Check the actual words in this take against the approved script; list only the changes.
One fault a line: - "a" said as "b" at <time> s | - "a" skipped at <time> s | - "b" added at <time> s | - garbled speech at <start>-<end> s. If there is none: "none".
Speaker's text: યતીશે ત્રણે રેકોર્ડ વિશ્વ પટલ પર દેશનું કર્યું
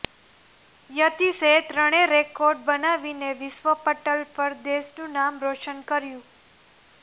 - "બનાવીને" added at 2.6 s
- "નામ રોશન" added at 5.2 s